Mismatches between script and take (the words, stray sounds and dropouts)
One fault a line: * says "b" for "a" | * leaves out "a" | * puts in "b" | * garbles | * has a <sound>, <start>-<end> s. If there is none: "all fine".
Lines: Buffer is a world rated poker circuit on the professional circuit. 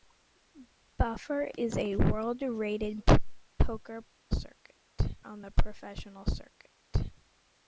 all fine